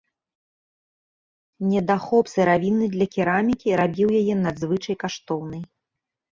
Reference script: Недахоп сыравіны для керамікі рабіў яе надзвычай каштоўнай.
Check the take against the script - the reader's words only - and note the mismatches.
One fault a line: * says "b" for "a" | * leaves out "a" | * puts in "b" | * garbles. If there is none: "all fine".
all fine